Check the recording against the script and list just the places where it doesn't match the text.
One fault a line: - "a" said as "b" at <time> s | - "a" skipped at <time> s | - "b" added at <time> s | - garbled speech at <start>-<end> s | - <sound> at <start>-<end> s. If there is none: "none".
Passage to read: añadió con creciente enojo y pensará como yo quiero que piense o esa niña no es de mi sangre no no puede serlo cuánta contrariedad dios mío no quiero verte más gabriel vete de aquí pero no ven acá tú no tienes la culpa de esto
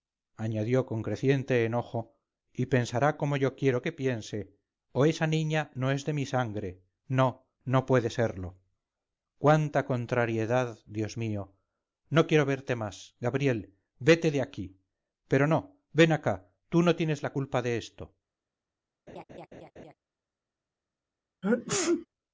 - laugh at 19.1-19.9 s
- sneeze at 21.4-22.1 s